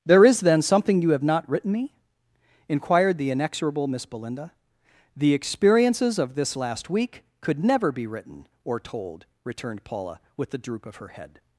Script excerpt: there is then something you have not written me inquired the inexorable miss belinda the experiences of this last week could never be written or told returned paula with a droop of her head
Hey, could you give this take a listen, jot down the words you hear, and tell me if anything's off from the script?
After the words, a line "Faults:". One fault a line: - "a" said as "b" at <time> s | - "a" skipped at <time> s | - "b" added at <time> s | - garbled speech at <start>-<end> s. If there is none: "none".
there is then something you have not written me inquired the inexorable miss belinda the experiences of this last week could never be written or told returned paula with the droop of her head
Faults:
- "a" said as "the" at 10.5 s